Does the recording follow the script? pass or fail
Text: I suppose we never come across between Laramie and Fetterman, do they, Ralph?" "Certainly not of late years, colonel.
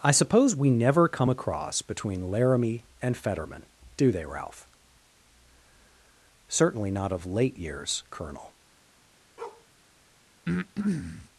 pass